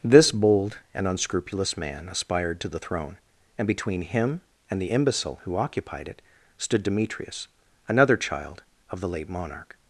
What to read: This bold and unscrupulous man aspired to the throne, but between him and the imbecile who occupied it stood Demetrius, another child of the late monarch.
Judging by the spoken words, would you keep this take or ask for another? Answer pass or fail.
fail